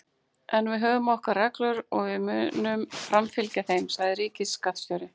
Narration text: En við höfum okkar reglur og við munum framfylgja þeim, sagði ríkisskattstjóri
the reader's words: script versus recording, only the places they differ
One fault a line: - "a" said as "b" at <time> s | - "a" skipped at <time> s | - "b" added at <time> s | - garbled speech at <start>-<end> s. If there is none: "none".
none